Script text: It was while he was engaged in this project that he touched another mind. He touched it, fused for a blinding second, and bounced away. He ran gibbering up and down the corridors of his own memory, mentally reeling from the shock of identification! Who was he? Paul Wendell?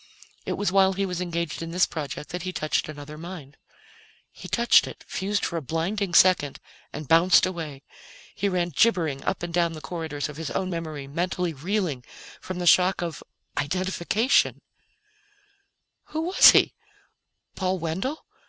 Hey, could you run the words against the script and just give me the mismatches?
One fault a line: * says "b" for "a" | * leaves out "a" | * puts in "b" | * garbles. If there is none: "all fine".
all fine